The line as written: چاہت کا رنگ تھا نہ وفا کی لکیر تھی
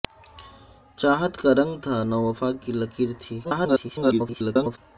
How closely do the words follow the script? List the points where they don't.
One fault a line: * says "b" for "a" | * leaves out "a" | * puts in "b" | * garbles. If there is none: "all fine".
* garbles